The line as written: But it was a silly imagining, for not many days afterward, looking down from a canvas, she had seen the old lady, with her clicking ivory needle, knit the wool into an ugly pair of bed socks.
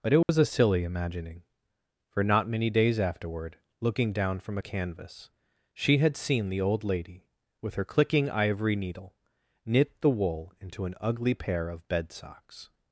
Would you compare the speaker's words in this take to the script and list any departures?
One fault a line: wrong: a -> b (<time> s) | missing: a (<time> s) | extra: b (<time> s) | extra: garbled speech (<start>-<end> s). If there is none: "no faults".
no faults